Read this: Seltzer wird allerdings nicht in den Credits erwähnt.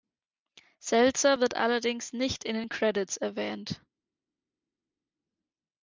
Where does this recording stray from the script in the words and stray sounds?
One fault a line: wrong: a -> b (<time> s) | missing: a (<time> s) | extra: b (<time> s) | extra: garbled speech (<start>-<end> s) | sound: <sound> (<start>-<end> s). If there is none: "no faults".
no faults